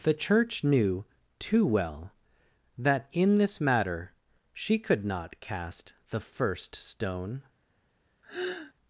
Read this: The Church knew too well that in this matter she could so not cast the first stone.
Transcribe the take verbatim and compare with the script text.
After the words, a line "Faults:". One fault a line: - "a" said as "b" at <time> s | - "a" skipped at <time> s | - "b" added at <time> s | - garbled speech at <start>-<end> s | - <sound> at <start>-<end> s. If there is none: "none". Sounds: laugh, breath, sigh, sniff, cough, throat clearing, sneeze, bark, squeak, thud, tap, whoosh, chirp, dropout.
The Church knew too well that in this matter she could not cast the first stone.
Faults:
- "so" skipped at 5.0 s
- sigh at 8.2-8.7 s